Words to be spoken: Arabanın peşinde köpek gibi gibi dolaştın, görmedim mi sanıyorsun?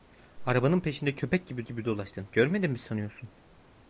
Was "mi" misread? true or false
false